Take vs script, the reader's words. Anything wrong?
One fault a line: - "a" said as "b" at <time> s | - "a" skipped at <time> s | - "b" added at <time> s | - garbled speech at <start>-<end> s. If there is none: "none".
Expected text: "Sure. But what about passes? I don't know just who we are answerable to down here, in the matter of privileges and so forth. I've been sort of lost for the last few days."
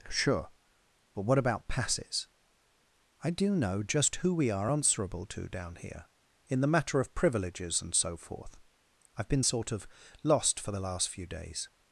- "don't" said as "do" at 3.3 s